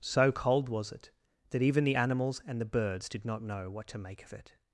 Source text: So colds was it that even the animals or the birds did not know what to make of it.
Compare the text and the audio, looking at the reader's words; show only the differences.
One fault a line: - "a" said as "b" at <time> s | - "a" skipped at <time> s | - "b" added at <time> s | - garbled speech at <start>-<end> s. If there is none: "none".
- "colds" said as "cold" at 0.3 s
- "or" said as "and" at 2.5 s